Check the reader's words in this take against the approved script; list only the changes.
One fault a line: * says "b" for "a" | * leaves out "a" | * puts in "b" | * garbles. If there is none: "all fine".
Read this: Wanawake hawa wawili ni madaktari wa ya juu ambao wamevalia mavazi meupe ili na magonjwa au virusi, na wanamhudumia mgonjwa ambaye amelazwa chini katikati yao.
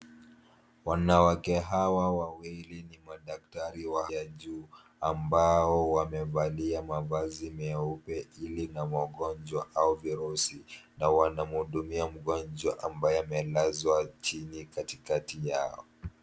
all fine